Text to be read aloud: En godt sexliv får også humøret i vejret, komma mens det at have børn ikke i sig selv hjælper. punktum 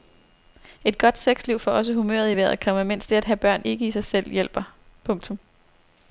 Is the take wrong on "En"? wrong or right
wrong